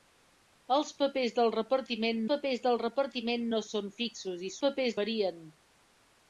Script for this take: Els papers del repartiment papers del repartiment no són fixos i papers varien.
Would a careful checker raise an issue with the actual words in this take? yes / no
no